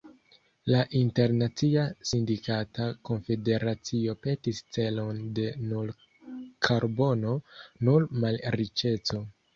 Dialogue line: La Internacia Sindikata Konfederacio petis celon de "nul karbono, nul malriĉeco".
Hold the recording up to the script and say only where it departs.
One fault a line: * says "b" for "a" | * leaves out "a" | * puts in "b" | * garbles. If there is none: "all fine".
all fine